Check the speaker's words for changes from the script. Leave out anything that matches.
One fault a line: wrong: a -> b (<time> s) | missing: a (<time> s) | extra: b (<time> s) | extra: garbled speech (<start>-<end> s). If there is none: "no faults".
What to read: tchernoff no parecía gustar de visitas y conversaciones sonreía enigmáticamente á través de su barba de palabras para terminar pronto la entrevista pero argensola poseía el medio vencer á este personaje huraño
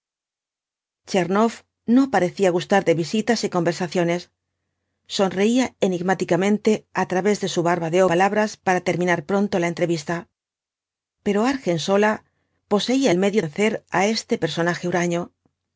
no faults